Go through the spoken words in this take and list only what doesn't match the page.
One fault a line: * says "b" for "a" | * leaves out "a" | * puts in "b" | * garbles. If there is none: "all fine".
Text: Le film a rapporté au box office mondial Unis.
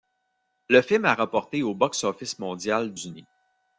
all fine